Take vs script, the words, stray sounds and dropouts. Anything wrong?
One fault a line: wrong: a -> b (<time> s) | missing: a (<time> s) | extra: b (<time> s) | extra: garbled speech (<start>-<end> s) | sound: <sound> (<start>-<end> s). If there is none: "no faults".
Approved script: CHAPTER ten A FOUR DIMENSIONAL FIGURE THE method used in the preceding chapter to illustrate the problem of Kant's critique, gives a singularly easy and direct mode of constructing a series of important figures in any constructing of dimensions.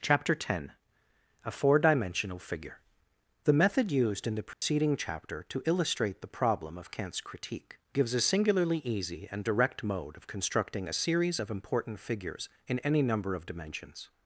sound: dropout (4.5-4.6 s)
wrong: constructing -> number (13.0 s)